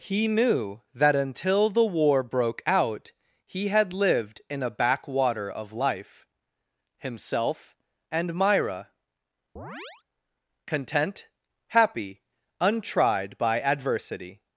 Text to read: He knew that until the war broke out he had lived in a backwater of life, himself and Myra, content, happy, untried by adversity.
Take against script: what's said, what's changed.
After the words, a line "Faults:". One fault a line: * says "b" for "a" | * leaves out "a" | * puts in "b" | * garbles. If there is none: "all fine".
He knew that until the war broke out he had lived in a backwater of life, himself and Myra, content, happy, untried by adversity.
Faults:
all fine